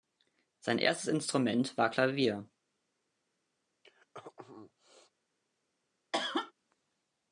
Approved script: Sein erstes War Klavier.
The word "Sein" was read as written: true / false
true